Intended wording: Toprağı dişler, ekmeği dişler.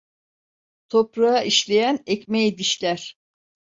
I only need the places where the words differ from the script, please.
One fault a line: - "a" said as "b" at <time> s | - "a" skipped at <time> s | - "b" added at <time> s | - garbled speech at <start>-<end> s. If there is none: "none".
- "dişler" said as "işleyen" at 1.4 s